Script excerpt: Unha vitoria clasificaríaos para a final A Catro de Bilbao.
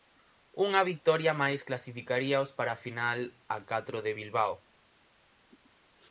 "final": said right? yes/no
yes